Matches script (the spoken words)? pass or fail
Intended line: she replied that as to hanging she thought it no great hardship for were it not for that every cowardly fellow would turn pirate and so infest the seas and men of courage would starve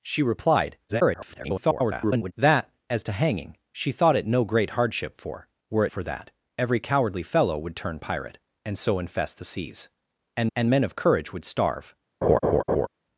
fail